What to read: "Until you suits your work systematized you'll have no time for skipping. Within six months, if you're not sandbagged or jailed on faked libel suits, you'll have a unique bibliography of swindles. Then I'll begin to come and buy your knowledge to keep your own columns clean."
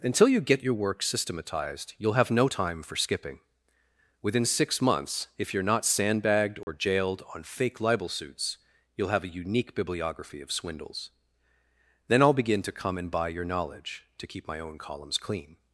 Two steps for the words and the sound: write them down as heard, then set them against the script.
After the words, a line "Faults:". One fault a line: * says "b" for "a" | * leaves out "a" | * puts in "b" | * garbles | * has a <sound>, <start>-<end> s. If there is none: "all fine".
"Until you get your work systematized you'll have no time for skipping. Within six months, if you're not sandbagged or jailed on fake libel suits, you'll have a unique bibliography of swindles. Then I'll begin to come and buy your knowledge to keep my own columns clean."
Faults:
* says "get" for "suits"
* has a dropout, 6.6-6.7 s
* says "fake" for "faked"
* says "my" for "your"